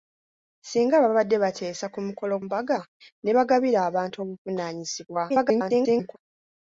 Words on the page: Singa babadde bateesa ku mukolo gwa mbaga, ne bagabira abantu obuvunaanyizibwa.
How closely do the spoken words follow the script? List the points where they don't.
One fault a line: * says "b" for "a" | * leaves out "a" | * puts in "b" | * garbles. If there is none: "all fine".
* leaves out "gwa"
* garbles